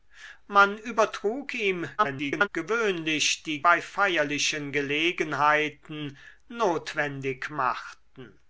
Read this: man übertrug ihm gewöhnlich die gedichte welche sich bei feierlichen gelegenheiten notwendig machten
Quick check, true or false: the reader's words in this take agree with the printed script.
false